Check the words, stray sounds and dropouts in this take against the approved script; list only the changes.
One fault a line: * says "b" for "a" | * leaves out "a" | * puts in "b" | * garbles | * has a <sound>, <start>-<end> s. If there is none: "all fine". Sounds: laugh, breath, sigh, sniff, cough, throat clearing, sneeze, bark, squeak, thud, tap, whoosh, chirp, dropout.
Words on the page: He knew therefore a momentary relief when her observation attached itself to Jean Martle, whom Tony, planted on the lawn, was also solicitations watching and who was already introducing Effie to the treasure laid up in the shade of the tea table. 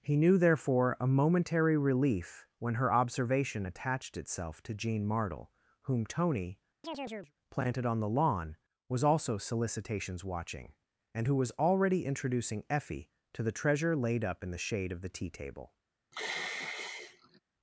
* has a chirp, 6.8-7.3 s
* has a sigh, 16.1-17.4 s